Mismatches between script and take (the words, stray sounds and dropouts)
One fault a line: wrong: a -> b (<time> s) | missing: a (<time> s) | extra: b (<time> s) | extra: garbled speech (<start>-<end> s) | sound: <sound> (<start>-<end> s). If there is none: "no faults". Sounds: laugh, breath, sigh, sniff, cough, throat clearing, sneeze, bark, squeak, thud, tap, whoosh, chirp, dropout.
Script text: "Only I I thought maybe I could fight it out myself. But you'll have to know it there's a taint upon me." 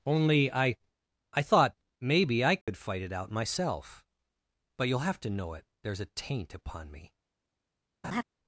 sound: dropout (2.6-2.7 s)
sound: laugh (8.0-8.2 s)